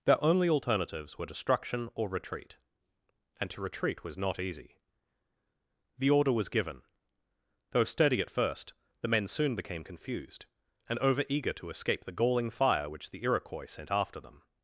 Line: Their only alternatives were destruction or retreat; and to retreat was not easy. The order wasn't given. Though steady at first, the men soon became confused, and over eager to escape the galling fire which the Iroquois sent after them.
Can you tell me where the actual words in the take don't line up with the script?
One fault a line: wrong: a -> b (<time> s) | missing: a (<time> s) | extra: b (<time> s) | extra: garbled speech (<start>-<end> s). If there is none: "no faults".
wrong: wasn't -> was (6.3 s)